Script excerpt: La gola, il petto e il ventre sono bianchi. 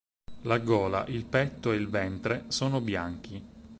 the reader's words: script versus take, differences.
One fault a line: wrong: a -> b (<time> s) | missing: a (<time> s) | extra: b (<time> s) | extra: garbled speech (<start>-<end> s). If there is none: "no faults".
no faults